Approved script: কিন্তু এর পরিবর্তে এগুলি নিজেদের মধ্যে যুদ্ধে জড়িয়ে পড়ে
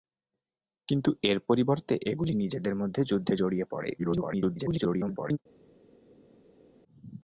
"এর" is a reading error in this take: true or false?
false